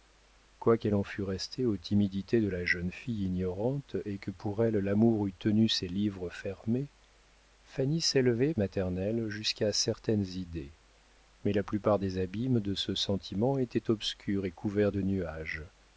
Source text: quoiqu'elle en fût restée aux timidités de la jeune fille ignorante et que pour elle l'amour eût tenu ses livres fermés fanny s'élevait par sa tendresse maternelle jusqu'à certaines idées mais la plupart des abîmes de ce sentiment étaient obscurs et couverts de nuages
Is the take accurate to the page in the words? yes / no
no